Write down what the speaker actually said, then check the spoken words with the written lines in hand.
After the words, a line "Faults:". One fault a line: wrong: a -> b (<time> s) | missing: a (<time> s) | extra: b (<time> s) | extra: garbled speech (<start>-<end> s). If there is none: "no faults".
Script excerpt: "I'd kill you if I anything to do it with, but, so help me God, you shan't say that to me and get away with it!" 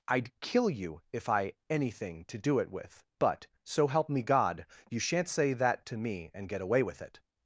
"I'd kill you if I anything to do it with, but, so help me God, you shan't say that to me and get away with it!"
Faults:
no faults